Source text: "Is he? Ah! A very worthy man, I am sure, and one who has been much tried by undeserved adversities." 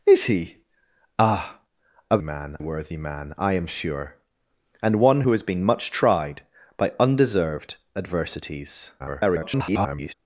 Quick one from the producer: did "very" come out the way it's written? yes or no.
no